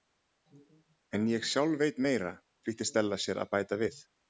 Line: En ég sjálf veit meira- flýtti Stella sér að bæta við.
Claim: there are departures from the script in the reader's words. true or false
false